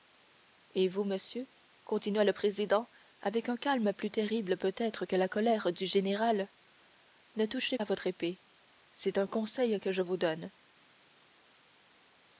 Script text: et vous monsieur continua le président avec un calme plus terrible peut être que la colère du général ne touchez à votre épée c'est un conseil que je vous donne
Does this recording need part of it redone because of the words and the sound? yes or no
no